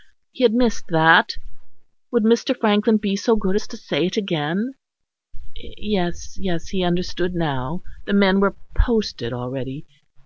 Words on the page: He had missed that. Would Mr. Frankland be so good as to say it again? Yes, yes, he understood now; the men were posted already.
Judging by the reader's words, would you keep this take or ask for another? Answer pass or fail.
pass